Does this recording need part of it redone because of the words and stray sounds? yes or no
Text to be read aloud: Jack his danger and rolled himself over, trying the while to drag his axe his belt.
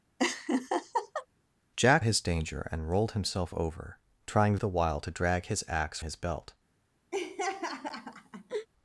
yes